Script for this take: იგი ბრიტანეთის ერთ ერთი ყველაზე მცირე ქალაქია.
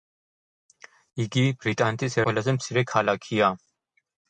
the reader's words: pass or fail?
fail